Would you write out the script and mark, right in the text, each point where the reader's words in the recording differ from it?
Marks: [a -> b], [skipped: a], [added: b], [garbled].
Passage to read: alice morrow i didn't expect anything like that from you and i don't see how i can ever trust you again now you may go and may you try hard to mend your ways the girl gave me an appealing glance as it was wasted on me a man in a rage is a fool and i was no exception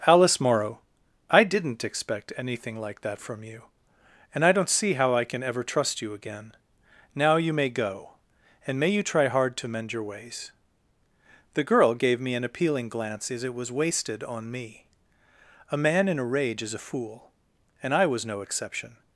alice morrow i didn't expect anything like that from you and i don't see how i can ever trust you again now you may go and may you try hard to mend your ways the girl gave me an appealing glance as it was wasted on me a man in a rage is a fool and i was no exception